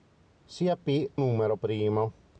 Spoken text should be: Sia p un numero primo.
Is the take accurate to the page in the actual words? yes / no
no